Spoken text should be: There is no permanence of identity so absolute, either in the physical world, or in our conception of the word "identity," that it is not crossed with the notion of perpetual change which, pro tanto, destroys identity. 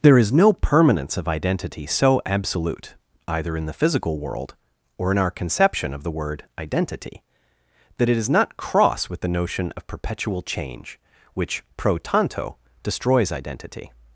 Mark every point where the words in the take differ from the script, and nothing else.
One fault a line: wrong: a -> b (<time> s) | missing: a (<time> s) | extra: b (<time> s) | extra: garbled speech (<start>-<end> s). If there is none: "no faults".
wrong: crossed -> cross (8.6 s)